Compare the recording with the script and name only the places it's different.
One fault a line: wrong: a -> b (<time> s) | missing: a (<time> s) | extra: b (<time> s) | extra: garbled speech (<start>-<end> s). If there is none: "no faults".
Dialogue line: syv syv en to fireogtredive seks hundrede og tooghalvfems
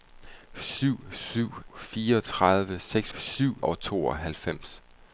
missing: en to (1.5 s)
wrong: hundrede -> syv (3.2 s)